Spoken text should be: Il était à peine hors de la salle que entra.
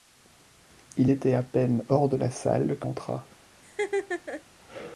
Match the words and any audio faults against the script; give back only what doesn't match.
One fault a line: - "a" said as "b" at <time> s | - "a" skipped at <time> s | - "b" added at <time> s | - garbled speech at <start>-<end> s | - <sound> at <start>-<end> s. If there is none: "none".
- laugh at 3.6-4.4 s